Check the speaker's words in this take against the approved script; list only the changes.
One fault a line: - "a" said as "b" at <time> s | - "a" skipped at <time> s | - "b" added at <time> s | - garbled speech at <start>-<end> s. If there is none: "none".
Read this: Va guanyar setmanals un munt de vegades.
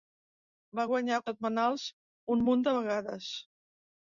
none